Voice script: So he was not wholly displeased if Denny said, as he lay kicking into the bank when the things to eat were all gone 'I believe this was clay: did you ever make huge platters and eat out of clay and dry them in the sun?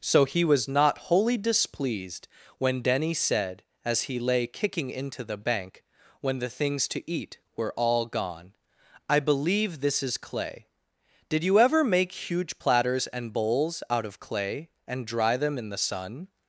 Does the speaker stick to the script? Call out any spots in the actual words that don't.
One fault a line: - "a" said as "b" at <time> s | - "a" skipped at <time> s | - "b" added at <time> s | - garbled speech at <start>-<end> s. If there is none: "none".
- "if" said as "when" at 2.6 s
- "was" said as "is" at 10.0 s
- "eat" said as "bowls" at 13.3 s